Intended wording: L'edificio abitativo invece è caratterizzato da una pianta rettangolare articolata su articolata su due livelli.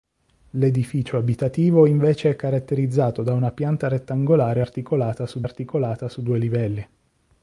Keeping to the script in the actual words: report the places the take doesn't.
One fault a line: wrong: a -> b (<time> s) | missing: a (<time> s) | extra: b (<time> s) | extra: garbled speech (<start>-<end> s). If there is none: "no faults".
no faults